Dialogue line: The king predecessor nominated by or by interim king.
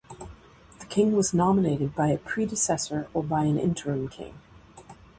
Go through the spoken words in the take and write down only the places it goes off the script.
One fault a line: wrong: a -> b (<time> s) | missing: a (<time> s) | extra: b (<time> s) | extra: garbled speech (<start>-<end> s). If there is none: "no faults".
wrong: predecessor -> was (1.1 s)
extra: a predecessor (2.1 s)
extra: an (3.4 s)